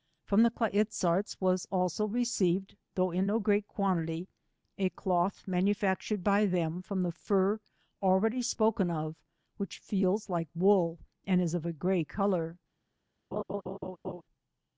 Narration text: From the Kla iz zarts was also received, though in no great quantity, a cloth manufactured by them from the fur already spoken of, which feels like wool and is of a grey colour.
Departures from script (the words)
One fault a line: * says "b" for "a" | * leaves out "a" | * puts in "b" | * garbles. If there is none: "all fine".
all fine